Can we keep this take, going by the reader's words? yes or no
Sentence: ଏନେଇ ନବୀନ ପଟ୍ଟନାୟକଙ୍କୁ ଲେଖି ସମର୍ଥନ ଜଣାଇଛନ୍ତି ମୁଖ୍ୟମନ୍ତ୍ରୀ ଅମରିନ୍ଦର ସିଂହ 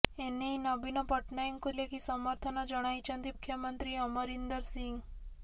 yes